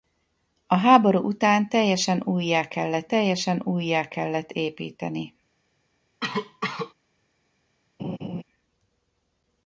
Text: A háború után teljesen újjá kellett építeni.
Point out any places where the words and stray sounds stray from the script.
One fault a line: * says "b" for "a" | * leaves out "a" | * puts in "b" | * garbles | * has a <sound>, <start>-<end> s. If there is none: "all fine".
* puts in "teljesen újjá kellett"
* has a cough, 6.2-6.9 s
* has a laugh, 8.0-8.4 s